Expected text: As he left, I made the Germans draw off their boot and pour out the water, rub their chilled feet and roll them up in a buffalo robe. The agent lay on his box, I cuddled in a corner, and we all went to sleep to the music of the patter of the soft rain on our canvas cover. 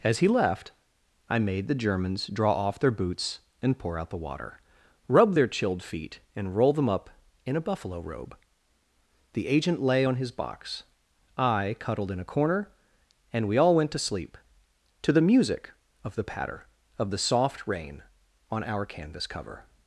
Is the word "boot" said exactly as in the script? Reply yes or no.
no